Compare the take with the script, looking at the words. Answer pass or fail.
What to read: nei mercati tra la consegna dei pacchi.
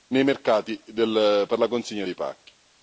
fail